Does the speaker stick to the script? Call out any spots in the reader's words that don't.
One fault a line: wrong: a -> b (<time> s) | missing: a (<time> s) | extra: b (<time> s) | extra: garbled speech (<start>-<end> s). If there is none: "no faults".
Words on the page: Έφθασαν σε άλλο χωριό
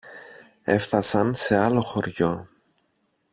no faults